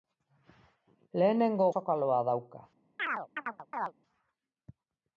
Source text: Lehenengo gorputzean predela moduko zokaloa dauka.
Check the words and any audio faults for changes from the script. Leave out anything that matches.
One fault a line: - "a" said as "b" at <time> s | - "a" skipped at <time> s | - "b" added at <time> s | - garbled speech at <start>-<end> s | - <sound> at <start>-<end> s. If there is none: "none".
- "gorputzean predela moduko" skipped at 1.7 s
- chirp at 3.0-3.9 s